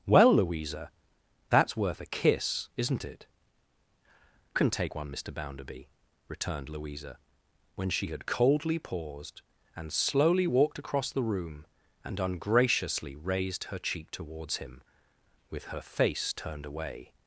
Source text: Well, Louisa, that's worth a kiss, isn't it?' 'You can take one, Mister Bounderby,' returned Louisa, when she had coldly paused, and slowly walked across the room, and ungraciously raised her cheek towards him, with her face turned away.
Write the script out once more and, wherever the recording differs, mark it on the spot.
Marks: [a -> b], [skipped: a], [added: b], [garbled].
Well, Louisa, that's worth a kiss, isn't it?' [skipped: 'You] can take one, Mister Bounderby,' returned Louisa, when she had coldly paused, and slowly walked across the room, and ungraciously raised her cheek towards him, with her face turned away.